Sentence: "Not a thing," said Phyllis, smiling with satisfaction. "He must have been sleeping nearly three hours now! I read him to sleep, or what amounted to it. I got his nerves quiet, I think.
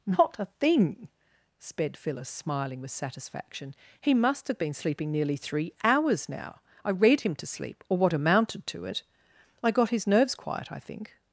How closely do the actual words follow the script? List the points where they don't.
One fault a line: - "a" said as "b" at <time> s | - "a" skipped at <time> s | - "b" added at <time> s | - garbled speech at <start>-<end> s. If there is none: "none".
- "said" said as "sped" at 1.6 s